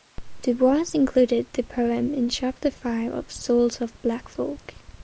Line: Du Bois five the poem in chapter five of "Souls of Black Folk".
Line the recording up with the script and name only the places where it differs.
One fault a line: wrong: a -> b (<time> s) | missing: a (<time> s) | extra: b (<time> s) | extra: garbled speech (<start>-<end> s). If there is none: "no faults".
wrong: five -> included (0.9 s)